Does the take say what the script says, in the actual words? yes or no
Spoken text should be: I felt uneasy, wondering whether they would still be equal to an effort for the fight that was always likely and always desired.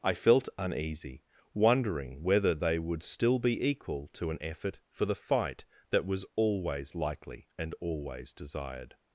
yes